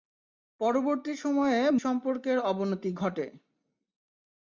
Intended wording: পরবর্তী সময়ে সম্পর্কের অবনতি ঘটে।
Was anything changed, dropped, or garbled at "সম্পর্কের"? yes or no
no